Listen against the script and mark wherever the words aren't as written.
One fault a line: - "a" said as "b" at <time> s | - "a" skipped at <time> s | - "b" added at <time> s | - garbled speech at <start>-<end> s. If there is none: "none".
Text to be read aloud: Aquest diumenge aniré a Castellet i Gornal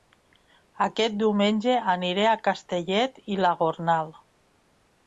- "la" added at 3.5 s